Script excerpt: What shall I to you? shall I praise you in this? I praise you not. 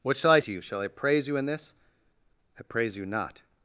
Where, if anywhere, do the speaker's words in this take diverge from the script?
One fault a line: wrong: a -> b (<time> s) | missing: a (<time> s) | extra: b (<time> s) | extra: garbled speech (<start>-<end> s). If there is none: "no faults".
no faults